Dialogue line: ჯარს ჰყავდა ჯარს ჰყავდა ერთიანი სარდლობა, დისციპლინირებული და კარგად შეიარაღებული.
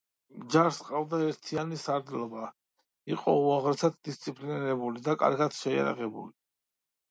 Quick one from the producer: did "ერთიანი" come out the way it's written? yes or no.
no